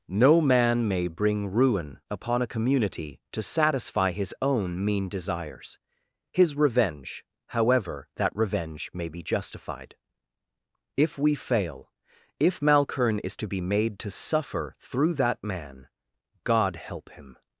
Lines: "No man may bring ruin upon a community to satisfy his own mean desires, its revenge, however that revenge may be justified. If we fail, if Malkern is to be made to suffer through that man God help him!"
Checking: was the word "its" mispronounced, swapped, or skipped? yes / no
yes